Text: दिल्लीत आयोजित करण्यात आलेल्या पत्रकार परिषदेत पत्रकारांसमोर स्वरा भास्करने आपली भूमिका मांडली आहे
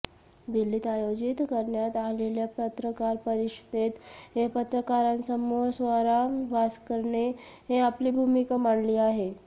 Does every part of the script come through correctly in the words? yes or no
yes